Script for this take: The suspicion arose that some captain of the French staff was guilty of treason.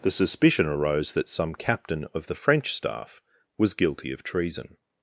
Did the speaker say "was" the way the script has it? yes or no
yes